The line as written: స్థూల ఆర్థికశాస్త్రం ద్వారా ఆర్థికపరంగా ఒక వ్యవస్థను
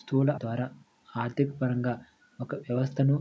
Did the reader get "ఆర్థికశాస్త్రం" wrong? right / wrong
wrong